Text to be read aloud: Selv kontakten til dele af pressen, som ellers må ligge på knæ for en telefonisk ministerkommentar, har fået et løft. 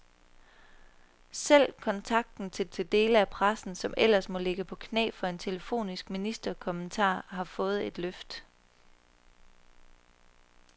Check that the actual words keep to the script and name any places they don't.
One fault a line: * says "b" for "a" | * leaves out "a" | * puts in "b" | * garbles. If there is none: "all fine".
* puts in "til"